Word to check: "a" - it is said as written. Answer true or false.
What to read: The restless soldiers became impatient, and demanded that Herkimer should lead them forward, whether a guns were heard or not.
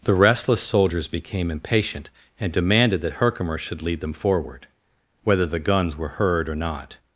false